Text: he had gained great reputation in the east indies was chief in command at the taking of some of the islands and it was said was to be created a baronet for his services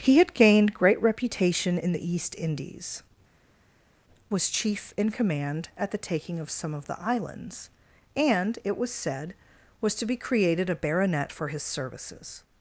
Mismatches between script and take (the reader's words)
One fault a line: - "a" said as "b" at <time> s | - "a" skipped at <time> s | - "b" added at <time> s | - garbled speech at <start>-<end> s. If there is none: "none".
none